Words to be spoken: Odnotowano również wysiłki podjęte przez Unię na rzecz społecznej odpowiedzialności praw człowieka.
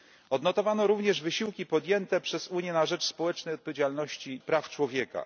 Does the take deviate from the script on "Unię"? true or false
false